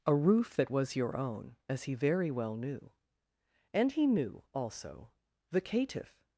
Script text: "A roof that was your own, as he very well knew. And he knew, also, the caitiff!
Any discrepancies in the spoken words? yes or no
no